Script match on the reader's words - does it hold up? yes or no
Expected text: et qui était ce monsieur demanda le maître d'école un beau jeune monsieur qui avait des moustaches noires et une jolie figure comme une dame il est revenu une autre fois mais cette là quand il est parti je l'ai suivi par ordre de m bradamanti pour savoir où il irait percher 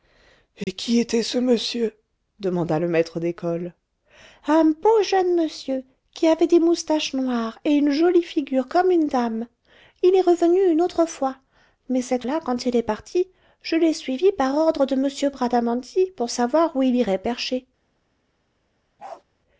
yes